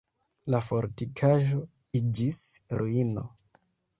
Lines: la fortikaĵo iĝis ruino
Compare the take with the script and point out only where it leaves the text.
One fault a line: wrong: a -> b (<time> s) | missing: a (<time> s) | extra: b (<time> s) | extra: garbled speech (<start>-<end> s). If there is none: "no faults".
no faults